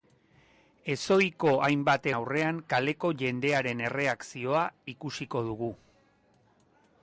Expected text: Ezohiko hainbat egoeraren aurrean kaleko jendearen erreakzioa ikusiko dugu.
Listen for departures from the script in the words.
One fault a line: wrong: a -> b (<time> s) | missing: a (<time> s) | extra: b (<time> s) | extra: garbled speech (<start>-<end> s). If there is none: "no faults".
missing: egoeraren (2.1 s)